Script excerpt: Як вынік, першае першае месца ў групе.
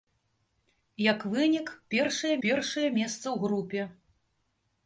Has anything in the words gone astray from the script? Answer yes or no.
no